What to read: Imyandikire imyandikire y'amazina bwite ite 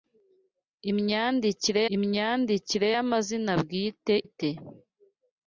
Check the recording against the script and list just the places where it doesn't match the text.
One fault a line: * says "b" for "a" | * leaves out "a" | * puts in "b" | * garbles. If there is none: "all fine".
all fine